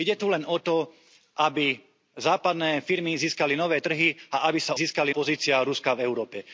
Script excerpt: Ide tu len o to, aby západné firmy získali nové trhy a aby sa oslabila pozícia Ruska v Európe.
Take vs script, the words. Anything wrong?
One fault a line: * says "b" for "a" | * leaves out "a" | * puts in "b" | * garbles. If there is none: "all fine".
* says "získali" for "oslabila"